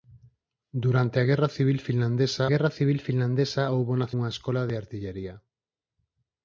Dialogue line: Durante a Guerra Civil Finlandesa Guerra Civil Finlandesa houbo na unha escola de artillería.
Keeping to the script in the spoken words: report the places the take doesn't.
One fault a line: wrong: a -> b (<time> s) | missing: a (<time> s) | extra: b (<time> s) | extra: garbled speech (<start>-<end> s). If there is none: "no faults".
no faults